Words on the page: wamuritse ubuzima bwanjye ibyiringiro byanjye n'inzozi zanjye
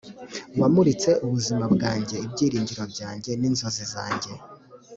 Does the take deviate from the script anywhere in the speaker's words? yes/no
no